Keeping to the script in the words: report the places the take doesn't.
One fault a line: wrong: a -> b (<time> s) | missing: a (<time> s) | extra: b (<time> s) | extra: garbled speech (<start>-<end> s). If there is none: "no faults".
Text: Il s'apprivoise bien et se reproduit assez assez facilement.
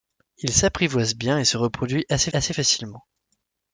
no faults